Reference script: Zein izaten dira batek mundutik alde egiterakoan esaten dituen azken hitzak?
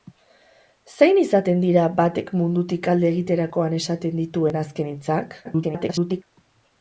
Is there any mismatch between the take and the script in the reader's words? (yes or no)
yes